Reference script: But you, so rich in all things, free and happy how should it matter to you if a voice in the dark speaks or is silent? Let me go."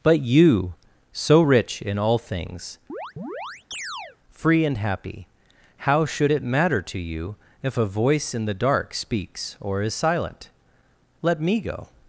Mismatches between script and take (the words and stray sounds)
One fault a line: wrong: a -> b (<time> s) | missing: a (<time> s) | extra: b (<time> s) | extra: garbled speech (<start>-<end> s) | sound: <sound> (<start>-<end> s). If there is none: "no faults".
sound: chirp (2.9-4.2 s)